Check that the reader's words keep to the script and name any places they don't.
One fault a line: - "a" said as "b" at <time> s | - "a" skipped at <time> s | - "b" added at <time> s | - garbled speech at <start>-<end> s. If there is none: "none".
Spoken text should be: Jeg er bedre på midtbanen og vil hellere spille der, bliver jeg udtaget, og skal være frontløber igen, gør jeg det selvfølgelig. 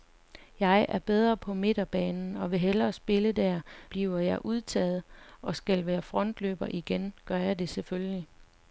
none